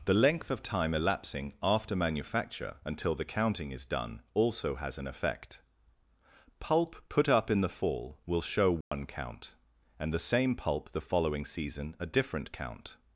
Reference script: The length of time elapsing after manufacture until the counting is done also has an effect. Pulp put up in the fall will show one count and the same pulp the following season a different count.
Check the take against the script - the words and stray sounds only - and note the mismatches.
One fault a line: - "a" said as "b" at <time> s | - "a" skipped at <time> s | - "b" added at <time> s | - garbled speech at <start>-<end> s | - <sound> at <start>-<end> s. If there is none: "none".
- dropout at 8.8-8.9 s